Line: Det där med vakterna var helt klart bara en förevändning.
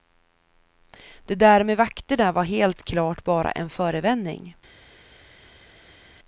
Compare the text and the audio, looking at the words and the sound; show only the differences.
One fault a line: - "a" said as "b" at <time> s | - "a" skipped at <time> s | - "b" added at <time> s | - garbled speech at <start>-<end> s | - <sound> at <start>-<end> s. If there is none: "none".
none